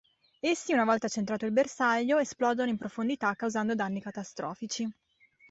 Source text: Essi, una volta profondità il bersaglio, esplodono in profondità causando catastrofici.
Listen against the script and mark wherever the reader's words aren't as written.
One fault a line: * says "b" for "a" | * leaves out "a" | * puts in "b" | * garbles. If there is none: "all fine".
* says "centrato" for "profondità"
* puts in "danni"